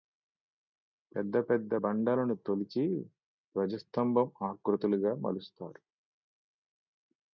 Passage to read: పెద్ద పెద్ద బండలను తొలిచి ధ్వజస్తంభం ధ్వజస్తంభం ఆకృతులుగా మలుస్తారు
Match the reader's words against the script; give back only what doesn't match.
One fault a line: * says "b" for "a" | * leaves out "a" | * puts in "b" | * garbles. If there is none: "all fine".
* leaves out "ధ్వజస్తంభం"